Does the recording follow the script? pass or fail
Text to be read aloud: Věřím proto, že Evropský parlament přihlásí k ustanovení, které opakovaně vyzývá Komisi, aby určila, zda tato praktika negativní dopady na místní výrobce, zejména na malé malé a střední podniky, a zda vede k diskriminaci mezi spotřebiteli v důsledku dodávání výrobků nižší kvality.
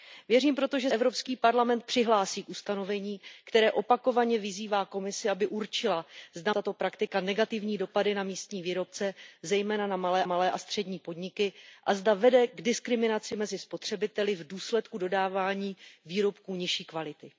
pass